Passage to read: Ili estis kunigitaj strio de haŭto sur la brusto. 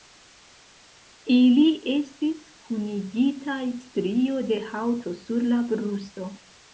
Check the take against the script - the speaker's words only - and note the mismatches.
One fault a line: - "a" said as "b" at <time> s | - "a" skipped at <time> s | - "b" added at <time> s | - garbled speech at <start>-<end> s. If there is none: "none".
none